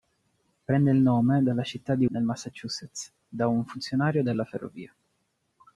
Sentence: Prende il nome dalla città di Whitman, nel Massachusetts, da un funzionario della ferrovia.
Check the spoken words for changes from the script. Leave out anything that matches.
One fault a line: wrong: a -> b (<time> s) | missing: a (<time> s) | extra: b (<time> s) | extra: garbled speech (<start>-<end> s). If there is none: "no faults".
missing: Whitman (2.1 s)